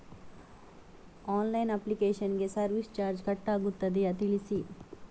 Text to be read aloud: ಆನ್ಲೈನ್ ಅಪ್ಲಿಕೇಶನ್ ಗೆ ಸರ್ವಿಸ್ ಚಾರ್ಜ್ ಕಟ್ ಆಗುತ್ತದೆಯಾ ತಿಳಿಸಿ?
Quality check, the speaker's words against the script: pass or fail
pass